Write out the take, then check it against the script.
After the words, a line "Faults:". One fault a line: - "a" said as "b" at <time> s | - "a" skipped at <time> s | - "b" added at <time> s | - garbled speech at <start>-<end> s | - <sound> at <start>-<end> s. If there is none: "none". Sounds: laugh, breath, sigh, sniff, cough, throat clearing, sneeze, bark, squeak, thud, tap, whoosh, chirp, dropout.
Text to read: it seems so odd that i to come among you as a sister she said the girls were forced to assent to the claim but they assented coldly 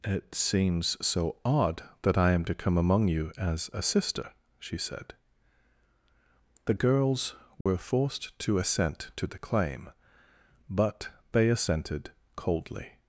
it seems so odd that i am to come among you as a sister she said the girls were forced to assent to the claim but they assented coldly
Faults:
- "am" added at 2.3 s
- dropout at 7.6-7.7 s